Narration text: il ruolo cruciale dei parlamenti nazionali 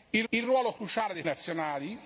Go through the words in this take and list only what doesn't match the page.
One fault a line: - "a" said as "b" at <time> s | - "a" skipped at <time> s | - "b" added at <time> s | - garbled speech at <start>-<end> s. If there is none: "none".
- "il" added at 0.3 s
- "parlamenti" skipped at 1.2 s